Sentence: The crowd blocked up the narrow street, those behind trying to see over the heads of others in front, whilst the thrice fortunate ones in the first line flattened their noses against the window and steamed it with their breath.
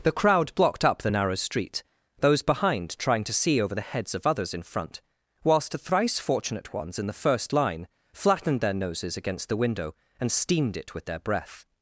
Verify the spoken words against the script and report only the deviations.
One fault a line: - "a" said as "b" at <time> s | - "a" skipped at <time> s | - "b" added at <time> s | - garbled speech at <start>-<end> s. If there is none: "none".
none